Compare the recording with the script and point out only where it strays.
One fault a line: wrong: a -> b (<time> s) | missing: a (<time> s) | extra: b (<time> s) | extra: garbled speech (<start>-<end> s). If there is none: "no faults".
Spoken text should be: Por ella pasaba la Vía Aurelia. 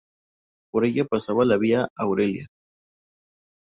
no faults